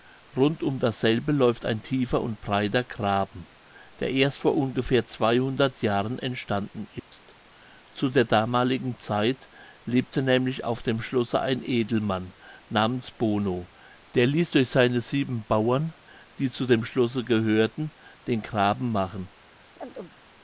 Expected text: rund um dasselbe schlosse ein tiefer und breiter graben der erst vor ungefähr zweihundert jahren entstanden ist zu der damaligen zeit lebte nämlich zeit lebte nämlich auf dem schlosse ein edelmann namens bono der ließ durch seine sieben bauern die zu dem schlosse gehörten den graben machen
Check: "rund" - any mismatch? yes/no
no